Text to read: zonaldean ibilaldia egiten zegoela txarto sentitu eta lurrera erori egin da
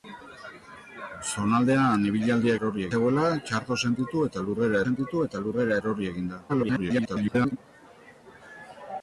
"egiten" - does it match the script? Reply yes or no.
no